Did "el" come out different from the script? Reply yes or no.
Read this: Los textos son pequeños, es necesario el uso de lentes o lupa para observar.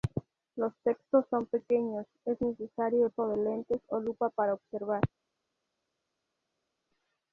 yes